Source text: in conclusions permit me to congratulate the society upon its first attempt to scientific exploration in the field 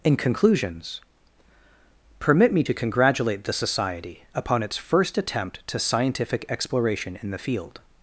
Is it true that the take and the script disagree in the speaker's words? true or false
false